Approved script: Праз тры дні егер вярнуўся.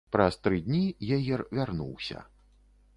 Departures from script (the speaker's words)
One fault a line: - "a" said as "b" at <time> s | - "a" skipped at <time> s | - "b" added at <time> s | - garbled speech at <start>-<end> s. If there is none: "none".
none